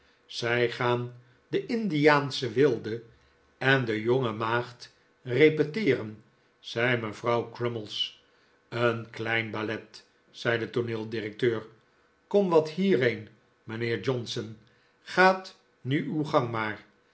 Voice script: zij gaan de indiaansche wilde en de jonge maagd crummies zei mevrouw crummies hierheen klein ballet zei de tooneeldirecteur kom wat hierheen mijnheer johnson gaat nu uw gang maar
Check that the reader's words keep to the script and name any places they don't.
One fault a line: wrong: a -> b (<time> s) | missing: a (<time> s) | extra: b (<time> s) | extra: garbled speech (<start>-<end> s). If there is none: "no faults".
wrong: crummies -> repeteeren (5.2 s)
wrong: hierheen -> een (8.7 s)